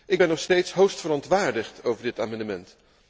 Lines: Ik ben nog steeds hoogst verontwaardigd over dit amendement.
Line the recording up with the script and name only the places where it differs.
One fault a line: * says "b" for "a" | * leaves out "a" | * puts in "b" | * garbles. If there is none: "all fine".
all fine